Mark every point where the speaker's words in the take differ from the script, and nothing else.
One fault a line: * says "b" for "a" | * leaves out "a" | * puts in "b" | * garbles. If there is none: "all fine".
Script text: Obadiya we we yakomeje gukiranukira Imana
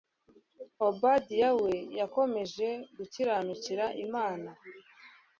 * leaves out "we"